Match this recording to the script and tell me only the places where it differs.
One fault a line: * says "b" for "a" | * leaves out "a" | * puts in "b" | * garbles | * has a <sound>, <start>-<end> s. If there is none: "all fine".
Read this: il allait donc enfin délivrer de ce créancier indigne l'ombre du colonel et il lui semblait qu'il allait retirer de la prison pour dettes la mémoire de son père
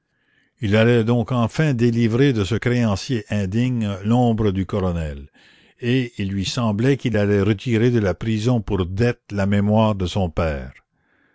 all fine